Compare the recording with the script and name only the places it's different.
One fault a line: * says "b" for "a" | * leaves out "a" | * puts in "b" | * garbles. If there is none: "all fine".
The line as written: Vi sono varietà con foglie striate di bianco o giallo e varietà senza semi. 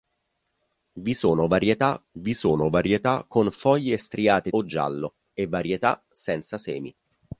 * puts in "vi sono varietà"
* leaves out "di bianco"